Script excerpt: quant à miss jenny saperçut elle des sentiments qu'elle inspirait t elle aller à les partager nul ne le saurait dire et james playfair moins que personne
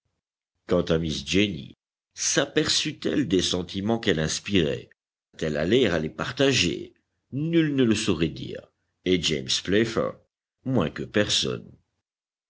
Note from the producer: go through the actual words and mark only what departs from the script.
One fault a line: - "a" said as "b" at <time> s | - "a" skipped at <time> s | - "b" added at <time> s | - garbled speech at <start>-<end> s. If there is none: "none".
none